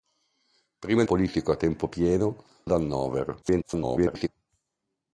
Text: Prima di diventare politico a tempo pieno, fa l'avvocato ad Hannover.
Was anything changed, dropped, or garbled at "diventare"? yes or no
yes